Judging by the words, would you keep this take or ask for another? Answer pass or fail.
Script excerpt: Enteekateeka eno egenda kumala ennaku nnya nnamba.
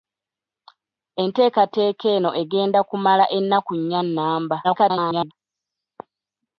fail